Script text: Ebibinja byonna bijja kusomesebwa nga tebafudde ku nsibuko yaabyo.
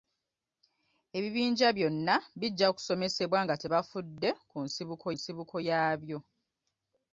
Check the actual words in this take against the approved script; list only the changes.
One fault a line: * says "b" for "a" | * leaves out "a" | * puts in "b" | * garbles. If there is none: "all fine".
* puts in "nsibuko"